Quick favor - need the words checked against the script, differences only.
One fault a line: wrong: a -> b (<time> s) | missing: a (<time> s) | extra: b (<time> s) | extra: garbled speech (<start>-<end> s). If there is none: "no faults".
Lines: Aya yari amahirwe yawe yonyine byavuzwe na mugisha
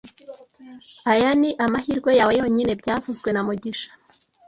wrong: yari -> ni (1.4 s)